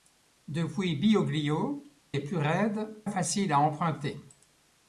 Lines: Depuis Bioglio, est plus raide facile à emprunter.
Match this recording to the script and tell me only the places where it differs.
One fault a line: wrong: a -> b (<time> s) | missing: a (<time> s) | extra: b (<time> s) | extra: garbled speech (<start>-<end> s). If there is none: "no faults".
no faults